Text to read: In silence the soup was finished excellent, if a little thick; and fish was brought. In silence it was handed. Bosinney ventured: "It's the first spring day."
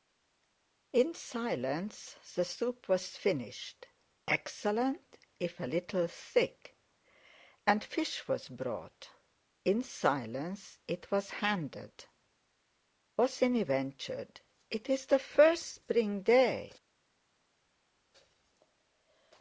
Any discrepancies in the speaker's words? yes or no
no